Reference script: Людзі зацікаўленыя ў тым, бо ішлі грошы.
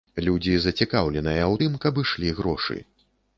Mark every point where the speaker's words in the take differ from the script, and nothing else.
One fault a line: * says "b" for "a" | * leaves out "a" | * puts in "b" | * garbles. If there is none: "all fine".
* says "каб" for "бо"